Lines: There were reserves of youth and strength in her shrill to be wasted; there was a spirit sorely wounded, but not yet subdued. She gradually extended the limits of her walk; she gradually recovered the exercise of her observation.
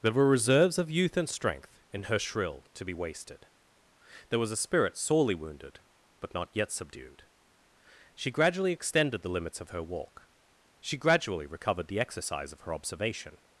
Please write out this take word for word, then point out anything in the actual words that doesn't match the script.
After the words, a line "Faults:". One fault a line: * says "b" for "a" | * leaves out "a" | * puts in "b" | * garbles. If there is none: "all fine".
There were reserves of youth and strength in her shrill to be wasted; there was a spirit sorely wounded, but not yet subdued. She gradually extended the limits of her walk; she gradually recovered the exercise of her observation.
Faults:
all fine